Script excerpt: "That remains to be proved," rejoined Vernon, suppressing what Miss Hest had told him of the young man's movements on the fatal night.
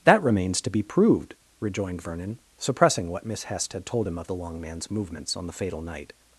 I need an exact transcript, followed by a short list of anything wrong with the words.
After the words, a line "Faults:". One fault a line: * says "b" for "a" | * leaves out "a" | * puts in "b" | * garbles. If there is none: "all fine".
"That remains to be proved," rejoined Vernon, suppressing what Miss Hest had told him of the long man's movements on the fatal night.
Faults:
* says "long" for "young"